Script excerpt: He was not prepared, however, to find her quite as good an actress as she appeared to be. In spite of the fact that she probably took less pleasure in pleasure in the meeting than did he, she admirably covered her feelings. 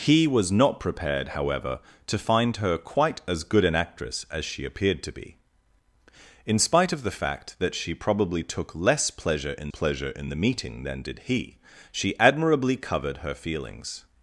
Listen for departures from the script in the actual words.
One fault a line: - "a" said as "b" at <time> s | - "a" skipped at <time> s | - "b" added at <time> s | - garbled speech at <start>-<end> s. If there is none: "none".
none